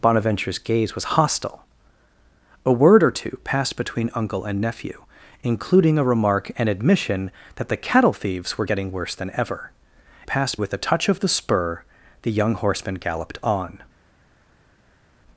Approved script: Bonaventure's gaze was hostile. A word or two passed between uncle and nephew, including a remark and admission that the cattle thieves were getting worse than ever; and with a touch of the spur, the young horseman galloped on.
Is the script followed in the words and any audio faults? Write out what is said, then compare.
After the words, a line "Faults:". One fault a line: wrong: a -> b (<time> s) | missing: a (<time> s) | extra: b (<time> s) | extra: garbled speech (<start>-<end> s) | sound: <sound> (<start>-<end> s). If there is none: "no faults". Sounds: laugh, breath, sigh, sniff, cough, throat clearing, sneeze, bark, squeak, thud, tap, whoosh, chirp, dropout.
Bonaventure's gaze was hostile. A word or two passed between uncle and nephew, including a remark and admission that the cattle thieves were getting worse than ever; passed with a touch of the spur, the young horseman galloped on.
Faults:
wrong: and -> passed (10.3 s)